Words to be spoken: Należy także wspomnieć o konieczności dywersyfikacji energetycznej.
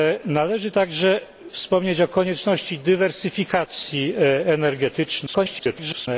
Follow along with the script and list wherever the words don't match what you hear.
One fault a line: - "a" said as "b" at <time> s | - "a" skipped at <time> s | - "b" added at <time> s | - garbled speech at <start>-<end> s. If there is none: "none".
- garbled speech at 5.3-6.1 s